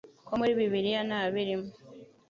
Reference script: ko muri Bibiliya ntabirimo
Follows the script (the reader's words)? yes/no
yes